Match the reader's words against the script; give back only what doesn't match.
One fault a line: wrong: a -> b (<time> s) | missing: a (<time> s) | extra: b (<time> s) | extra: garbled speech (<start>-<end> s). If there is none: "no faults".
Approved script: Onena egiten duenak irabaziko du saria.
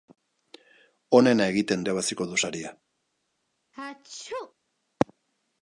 missing: duenak (1.8 s)